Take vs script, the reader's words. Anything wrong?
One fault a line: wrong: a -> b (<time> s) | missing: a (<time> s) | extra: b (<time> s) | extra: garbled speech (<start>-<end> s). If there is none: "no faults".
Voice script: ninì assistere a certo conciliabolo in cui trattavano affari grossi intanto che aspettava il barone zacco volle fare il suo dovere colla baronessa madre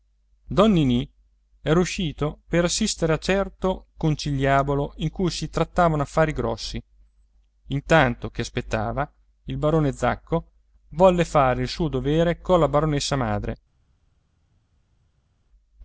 extra: era uscito per (1.6 s)
extra: si (5.3 s)